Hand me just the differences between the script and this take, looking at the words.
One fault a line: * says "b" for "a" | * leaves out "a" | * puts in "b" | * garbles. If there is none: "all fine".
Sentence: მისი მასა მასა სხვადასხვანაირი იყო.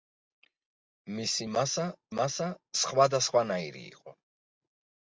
all fine